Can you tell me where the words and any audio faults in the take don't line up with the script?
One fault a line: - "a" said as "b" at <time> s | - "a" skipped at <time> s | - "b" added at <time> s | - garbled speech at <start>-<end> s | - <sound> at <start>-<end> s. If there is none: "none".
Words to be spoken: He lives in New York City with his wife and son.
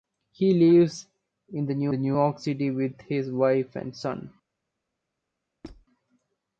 - "New" added at 1.9 s
- squeak at 5.6-5.9 s